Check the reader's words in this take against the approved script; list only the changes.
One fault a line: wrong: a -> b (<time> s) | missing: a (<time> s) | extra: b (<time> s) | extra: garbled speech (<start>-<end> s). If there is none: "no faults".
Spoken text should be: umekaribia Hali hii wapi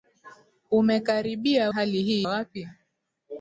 no faults